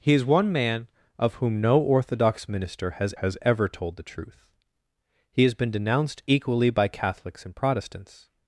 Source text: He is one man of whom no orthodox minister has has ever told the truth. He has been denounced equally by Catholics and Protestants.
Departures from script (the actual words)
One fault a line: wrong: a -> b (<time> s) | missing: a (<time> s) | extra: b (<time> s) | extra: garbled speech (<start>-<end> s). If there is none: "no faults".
no faults